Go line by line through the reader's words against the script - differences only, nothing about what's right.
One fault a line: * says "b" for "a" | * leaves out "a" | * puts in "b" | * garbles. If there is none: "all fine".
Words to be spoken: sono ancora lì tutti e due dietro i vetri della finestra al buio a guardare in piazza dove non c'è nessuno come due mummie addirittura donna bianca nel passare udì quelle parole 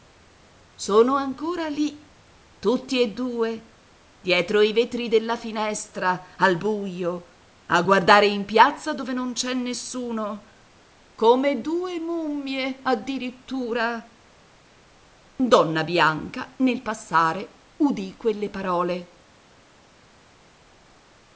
all fine